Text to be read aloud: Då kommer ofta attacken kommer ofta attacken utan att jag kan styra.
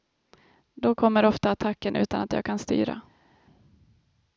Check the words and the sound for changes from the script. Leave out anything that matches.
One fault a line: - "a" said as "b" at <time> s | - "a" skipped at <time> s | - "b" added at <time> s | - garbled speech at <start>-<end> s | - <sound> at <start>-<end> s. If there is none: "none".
- "kommer ofta attacken" skipped at 1.9 s